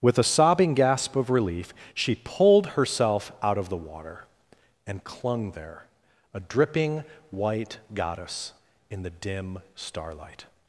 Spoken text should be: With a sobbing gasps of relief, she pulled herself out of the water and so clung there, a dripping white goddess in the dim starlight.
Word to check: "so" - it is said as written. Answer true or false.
false